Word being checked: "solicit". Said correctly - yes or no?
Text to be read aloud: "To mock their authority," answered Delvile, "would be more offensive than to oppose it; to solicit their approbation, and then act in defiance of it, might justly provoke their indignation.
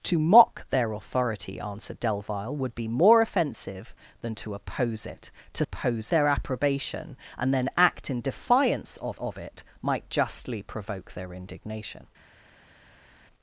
no